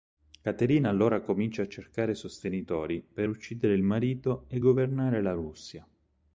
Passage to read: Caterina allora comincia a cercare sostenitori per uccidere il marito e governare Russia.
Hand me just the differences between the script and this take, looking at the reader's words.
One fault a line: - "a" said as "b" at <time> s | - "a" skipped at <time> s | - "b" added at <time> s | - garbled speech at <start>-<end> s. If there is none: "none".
- "la" added at 5.2 s